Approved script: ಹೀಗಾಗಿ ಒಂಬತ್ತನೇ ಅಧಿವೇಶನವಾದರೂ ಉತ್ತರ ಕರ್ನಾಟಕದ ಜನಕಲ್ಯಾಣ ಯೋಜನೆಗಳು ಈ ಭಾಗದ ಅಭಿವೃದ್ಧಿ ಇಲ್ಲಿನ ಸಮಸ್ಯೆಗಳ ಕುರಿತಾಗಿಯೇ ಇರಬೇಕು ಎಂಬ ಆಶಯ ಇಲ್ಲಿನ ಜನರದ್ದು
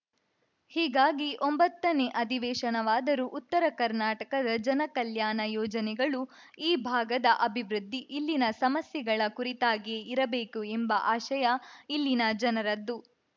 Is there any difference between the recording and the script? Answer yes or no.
no